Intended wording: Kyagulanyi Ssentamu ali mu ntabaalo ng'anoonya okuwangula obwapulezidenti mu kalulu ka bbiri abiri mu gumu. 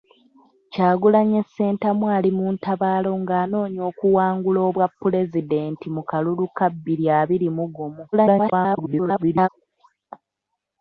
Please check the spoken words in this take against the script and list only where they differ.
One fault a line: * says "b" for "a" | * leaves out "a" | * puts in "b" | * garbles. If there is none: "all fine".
* garbles